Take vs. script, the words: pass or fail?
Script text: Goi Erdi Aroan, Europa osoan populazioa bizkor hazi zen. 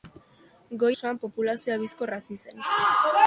fail